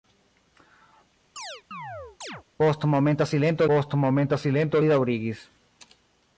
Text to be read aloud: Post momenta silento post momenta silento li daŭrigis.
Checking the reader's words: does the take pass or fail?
pass